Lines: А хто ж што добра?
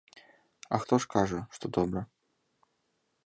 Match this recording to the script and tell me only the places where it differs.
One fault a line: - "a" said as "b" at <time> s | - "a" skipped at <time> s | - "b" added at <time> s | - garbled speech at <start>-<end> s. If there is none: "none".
- "кажа" added at 1.1 s